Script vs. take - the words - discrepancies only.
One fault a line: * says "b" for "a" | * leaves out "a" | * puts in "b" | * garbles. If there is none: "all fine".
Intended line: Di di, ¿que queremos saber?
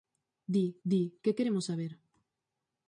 all fine